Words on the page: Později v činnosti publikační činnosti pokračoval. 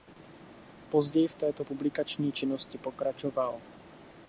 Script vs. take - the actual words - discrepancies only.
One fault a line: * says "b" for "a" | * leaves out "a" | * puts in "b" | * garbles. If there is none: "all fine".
* says "této" for "činnosti"